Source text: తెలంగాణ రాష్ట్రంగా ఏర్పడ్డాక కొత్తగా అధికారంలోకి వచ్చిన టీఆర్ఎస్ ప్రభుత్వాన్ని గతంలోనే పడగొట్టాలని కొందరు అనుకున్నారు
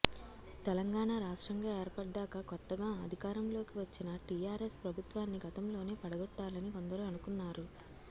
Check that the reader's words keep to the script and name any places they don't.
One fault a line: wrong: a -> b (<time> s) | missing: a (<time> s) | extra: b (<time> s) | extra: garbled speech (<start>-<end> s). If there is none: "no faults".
no faults